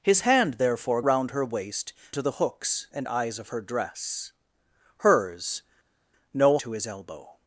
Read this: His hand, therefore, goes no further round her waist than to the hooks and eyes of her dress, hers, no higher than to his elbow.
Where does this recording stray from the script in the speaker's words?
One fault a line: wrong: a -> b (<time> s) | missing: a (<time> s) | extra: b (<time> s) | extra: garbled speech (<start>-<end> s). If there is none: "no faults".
missing: goes no further (1.0 s)
missing: than (1.9 s)
missing: higher than (6.6 s)